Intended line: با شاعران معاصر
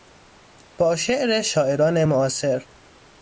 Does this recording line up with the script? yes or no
no